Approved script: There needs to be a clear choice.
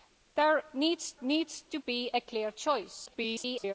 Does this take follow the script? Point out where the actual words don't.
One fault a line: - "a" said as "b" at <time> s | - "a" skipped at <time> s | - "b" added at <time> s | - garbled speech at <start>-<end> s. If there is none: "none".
- "needs" added at 1.2 s
- garbled speech at 3.1-3.7 s